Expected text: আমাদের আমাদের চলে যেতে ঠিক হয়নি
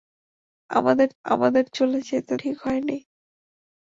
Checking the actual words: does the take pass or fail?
pass